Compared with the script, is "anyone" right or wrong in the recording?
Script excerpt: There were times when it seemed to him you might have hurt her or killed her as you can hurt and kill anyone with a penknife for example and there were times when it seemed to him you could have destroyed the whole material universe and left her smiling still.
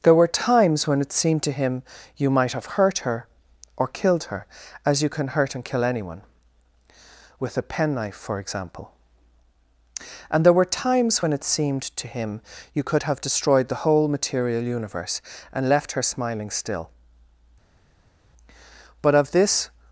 right